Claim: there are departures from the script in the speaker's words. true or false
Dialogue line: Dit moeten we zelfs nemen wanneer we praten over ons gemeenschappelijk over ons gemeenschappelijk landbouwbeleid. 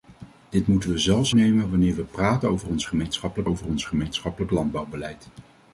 false